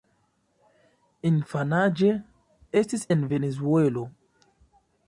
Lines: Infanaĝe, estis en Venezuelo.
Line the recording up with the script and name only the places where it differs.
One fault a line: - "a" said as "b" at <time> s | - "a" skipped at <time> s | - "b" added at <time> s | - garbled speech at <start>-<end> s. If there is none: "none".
none